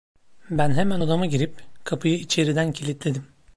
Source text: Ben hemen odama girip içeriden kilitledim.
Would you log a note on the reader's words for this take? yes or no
yes